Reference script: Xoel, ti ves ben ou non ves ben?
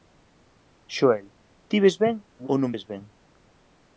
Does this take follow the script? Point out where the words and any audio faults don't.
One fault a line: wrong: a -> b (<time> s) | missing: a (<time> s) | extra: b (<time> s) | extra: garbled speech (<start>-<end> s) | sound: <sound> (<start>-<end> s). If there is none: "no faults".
no faults